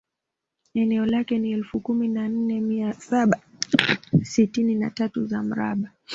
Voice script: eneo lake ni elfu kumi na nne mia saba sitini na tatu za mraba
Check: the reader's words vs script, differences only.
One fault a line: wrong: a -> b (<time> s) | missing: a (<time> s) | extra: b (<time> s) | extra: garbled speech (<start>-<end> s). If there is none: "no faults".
no faults